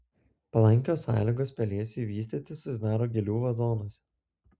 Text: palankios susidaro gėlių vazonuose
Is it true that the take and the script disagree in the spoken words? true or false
true